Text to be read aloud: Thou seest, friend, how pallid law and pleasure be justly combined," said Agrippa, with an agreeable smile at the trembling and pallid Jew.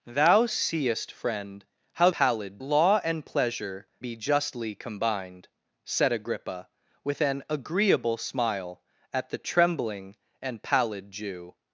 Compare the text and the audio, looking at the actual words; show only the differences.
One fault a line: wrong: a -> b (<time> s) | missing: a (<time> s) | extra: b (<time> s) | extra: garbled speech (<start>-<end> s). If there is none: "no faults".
no faults